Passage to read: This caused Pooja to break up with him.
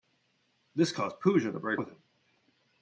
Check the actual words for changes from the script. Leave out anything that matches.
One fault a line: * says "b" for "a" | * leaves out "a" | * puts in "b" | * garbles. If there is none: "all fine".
* leaves out "up"